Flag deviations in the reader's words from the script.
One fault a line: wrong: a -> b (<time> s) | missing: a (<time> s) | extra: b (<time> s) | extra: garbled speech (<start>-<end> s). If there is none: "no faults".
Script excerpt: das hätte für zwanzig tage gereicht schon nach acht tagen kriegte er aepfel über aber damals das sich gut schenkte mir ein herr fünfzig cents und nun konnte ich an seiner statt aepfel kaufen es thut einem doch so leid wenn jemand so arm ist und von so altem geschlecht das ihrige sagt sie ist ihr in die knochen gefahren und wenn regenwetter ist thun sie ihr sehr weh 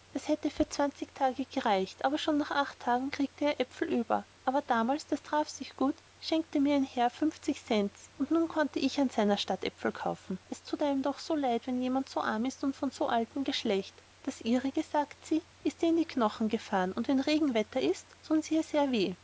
extra: aber (2.0 s)
extra: traf (5.2 s)